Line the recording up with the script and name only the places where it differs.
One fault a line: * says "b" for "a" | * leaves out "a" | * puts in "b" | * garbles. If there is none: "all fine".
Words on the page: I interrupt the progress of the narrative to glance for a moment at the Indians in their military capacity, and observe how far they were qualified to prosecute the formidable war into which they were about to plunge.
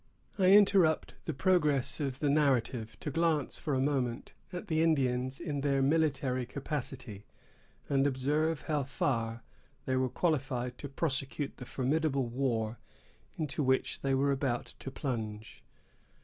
all fine